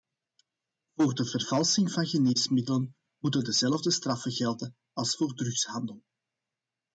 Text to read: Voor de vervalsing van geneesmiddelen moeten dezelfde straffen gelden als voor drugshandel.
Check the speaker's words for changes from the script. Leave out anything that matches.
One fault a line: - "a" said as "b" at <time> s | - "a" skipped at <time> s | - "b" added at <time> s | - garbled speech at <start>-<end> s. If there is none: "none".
none